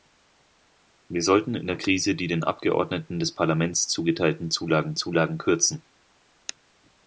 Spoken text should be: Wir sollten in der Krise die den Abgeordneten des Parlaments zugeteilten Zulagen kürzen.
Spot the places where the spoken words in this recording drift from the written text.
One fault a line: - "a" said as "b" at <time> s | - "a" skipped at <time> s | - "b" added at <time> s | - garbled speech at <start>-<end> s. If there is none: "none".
- "Zulagen" added at 4.9 s